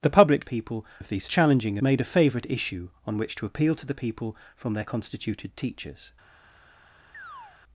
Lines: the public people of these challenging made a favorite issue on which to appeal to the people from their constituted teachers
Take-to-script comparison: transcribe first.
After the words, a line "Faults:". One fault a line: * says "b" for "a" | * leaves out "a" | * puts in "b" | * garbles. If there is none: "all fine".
the public people of these challenging made a favorite issue on which to appeal to the people from their constituted teachers
Faults:
all fine